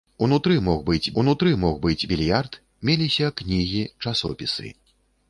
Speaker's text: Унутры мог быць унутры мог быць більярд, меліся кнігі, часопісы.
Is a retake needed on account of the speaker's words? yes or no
no